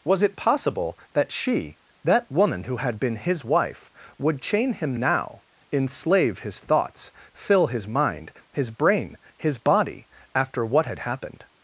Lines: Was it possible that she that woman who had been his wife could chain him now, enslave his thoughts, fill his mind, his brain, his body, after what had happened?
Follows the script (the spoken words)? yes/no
no